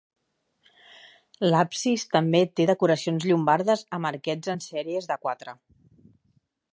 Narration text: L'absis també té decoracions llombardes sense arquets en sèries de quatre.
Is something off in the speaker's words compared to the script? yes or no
yes